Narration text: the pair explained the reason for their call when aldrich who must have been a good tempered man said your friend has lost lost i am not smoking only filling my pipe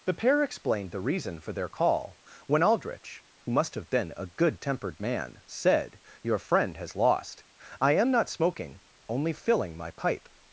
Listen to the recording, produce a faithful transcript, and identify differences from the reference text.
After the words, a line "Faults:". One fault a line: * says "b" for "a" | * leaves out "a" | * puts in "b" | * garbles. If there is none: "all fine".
the pair explained the reason for their call when aldrich who must have been a good tempered man said your friend has lost i am not smoking only filling my pipe
Faults:
* leaves out "lost"